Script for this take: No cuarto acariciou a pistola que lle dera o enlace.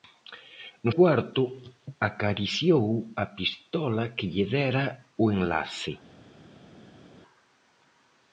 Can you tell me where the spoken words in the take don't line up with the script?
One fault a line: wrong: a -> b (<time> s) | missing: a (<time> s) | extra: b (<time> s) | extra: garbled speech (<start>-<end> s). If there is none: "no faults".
no faults